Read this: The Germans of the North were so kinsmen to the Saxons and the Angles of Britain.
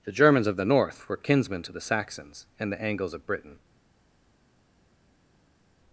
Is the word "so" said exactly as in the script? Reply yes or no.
no